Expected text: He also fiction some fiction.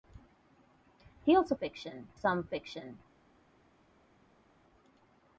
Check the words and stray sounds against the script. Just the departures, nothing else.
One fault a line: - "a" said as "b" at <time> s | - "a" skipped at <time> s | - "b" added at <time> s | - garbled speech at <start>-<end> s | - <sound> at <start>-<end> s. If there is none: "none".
none